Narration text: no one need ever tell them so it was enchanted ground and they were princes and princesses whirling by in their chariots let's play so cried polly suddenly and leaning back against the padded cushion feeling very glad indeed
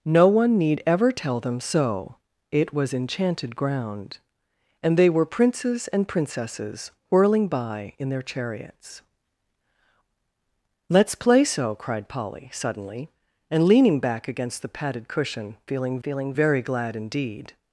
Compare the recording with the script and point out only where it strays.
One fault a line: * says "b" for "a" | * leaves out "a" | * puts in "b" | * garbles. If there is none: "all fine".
* puts in "feeling"